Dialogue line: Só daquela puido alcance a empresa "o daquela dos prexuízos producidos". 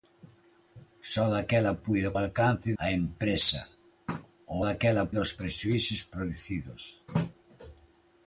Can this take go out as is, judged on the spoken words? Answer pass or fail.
pass